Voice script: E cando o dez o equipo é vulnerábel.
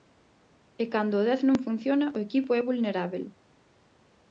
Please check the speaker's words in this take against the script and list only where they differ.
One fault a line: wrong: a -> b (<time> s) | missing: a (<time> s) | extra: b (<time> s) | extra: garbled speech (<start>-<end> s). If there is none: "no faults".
extra: non funciona (1.5 s)